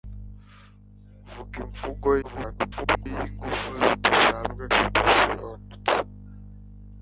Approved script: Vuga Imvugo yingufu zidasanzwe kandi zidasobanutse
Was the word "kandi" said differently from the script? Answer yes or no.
yes